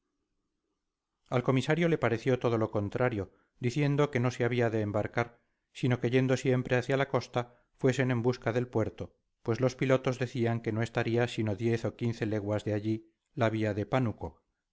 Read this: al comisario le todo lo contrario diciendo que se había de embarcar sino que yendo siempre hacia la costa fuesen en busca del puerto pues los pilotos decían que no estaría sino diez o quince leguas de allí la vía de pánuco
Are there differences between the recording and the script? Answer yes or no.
yes